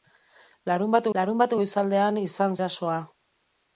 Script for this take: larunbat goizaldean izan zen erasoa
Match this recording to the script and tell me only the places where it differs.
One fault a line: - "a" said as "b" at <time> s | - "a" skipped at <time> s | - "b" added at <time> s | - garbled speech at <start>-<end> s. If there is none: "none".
- "larunbat" added at 1.2 s
- "zen" skipped at 2.6 s